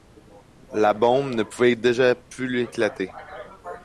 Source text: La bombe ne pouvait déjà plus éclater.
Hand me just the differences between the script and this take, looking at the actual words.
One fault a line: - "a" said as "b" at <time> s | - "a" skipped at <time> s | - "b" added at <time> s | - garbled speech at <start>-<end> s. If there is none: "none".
none